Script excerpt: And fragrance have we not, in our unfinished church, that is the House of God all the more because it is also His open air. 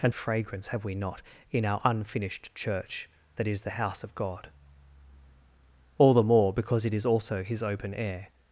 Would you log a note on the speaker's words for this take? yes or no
no